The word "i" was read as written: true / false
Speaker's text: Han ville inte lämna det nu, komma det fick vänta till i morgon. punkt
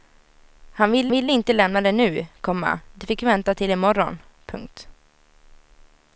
true